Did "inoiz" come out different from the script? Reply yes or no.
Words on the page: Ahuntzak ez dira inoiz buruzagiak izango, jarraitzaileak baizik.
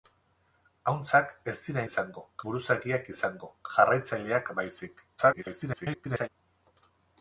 yes